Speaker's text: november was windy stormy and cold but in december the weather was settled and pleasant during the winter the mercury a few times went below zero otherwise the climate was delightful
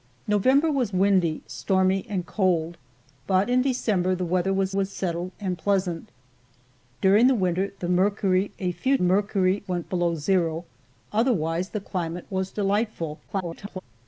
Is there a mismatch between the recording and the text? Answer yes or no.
yes